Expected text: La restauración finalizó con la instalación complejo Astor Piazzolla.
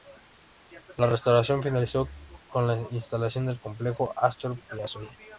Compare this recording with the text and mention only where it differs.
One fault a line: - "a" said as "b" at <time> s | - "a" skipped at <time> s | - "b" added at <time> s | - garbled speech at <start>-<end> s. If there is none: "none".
- "del" added at 3.5 s